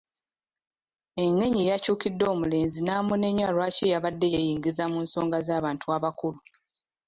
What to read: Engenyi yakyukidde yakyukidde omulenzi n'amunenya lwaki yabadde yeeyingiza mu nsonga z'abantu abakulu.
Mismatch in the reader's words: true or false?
true